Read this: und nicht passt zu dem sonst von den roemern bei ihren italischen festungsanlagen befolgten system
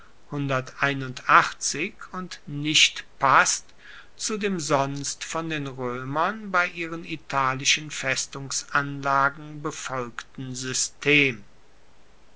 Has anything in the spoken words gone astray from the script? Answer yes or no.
no